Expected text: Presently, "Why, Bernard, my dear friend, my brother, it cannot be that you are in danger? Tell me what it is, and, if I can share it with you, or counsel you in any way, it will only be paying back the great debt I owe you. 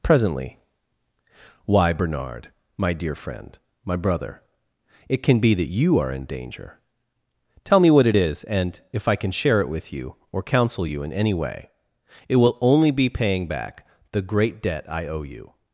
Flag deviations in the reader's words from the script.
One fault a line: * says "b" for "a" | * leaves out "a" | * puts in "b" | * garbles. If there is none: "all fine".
* says "can" for "cannot"